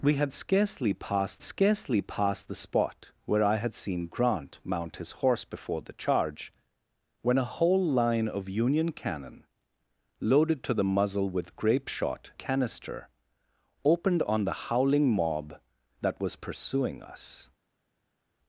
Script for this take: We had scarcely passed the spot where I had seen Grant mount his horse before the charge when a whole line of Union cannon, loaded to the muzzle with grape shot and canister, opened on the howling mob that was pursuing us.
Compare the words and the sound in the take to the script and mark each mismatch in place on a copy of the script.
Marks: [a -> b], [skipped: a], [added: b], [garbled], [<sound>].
We had scarcely passed [added: scarcely passed] the spot where I had seen Grant mount his horse before the charge when a whole line of Union cannon, loaded to the muzzle with grape shot [skipped: and] canister, opened on the howling mob that was pursuing us.